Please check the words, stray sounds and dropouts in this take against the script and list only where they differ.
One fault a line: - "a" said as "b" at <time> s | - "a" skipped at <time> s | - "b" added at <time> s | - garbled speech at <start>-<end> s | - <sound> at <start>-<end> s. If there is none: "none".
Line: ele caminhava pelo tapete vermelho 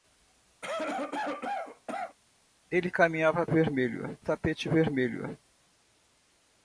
- cough at 0.6-2.2 s
- "pelo" said as "vermelho" at 3.5 s